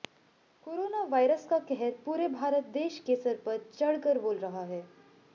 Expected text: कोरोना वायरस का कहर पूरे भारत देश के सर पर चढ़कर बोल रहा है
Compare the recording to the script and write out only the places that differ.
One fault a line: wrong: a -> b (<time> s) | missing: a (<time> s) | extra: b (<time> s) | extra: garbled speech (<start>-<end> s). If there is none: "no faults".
no faults